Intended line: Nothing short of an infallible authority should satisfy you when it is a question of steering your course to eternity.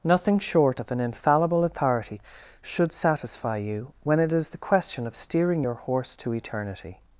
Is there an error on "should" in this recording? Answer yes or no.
no